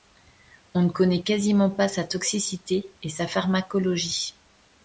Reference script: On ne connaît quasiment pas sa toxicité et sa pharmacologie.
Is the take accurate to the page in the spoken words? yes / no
yes